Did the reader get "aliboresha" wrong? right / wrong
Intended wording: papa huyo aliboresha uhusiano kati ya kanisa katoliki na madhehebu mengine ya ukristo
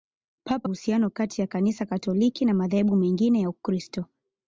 wrong